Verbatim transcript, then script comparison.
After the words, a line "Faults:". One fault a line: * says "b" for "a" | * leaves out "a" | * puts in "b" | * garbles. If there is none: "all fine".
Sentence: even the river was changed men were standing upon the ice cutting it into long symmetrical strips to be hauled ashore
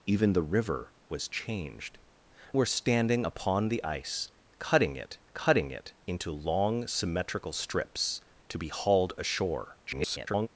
even the river was changed were standing upon the ice cutting it cutting it into long symmetrical strips to be hauled ashore [garbled]
Faults:
* leaves out "men"
* puts in "cutting it"
* garbles